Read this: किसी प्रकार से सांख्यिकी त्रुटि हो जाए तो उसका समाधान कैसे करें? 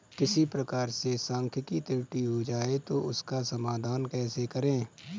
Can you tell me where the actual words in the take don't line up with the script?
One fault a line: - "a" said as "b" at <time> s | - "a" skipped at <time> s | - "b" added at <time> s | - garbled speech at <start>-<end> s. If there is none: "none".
none